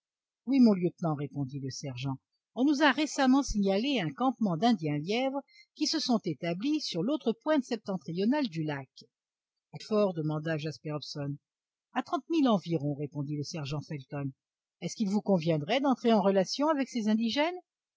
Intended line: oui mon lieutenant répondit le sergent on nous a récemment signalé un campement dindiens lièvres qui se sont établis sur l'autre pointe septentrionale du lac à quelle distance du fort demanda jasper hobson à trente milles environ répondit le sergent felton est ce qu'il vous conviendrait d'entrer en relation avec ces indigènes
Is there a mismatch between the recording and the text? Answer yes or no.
yes